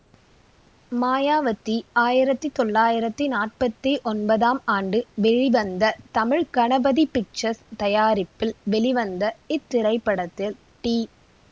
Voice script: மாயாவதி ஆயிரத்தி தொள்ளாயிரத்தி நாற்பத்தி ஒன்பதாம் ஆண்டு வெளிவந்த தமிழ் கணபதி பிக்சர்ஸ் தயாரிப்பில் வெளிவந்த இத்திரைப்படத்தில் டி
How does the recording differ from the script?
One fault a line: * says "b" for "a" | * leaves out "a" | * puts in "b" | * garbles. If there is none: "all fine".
all fine